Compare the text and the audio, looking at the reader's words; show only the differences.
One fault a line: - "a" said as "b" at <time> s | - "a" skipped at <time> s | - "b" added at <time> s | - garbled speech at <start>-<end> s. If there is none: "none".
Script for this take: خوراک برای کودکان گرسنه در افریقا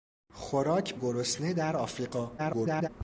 - "برای کودکان" skipped at 0.9 s
- garbled speech at 2.4-2.9 s